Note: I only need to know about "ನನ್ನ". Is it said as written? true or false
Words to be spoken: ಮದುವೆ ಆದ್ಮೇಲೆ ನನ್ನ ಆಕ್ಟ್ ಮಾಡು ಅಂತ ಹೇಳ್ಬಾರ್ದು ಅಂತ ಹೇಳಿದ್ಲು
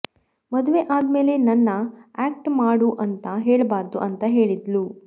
true